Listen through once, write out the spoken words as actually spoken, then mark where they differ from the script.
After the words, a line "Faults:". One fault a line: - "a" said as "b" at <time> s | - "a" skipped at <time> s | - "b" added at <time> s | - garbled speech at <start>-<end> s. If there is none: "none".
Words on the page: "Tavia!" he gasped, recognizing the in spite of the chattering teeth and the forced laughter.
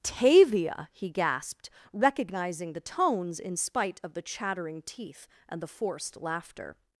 "Tavia!" he gasped, recognizing the tones in spite of the chattering teeth and the forced laughter.
Faults:
- "tones" added at 2.8 s